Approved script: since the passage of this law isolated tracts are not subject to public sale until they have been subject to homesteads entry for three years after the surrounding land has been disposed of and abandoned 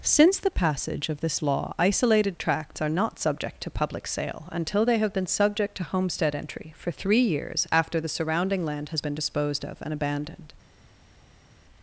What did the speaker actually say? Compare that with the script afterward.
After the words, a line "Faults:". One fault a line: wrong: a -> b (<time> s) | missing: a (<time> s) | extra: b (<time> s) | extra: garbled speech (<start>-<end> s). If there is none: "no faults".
since the passage of this law isolated tracts are not subject to public sale until they have been subject to homestead entry for three years after the surrounding land has been disposed of and abandoned
Faults:
wrong: homesteads -> homestead (5.8 s)